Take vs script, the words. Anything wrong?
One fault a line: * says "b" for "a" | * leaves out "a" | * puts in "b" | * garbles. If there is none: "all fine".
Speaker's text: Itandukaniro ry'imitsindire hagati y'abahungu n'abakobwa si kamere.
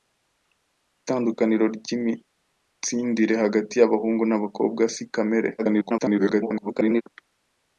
* garbles